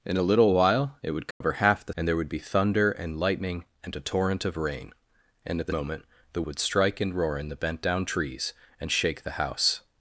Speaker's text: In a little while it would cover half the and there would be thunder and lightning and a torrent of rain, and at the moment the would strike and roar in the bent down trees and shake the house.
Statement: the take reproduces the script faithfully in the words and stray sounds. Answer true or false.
false